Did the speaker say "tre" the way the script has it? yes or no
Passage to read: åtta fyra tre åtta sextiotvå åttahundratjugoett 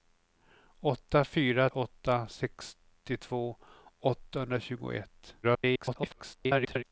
no